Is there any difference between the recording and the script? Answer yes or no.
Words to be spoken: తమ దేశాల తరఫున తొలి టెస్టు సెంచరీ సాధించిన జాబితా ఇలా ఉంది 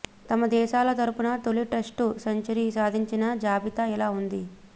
no